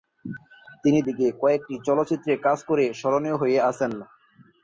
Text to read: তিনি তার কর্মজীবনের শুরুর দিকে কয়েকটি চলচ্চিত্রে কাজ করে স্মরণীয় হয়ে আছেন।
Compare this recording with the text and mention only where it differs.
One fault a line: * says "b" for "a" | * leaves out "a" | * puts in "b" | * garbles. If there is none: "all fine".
* leaves out "তার কর্মজীবনের শুরুর"